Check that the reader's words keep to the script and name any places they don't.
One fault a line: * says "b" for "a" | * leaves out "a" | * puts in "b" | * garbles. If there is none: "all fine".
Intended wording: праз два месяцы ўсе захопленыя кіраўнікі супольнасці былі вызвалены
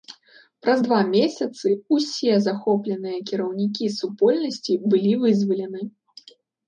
all fine